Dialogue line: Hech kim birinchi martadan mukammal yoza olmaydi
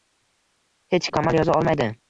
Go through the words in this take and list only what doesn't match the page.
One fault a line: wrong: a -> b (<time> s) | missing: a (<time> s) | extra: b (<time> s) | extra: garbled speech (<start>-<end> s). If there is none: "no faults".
missing: kim birinchi martadan (1.1 s)